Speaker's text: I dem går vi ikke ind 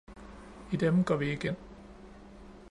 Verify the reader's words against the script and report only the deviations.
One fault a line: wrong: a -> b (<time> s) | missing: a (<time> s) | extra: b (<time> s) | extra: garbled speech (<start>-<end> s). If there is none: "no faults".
no faults